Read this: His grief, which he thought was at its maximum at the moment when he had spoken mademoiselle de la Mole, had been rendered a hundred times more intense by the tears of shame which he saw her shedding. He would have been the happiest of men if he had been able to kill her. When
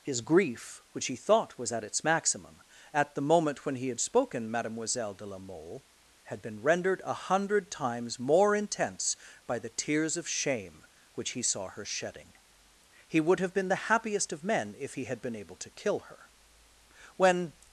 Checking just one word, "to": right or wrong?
right